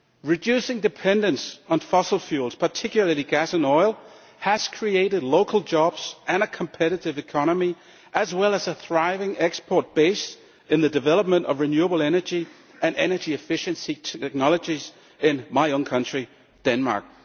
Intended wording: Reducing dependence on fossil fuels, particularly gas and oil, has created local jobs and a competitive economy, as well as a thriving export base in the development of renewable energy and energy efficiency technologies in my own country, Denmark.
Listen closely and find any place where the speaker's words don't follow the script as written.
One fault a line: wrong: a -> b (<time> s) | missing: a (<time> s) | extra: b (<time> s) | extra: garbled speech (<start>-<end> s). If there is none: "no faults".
no faults